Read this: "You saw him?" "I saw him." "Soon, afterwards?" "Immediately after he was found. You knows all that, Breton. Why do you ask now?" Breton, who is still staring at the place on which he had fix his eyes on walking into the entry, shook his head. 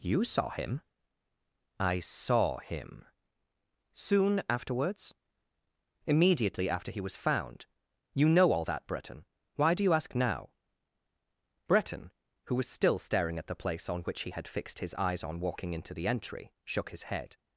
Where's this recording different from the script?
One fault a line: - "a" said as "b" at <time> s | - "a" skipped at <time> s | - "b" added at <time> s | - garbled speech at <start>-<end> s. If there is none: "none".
- "knows" said as "know" at 8.3 s
- "is" said as "was" at 12.6 s
- "fix" said as "fixed" at 14.5 s